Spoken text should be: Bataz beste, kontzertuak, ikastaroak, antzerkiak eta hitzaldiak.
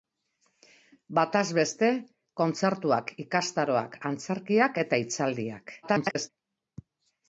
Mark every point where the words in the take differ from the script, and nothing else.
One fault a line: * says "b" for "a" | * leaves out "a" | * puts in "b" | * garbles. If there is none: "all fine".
* garbles